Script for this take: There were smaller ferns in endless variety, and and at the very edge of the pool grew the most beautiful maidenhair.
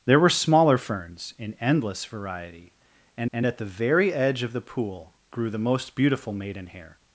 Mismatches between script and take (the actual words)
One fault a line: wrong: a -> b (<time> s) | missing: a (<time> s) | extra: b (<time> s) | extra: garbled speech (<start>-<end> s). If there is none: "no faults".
no faults